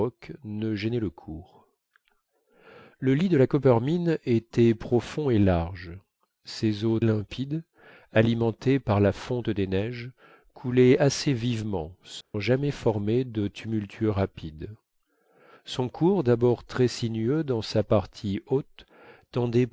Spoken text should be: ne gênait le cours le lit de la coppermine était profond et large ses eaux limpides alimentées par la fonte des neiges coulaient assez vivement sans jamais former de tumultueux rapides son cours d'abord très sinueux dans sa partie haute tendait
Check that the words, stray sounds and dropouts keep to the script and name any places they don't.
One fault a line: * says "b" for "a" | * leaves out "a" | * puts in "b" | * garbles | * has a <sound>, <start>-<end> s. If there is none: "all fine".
* has a dropout, 12.2-12.3 s